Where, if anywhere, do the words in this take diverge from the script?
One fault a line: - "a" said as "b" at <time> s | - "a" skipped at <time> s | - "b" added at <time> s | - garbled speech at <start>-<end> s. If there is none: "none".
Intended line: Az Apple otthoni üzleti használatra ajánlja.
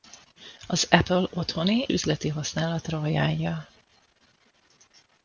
none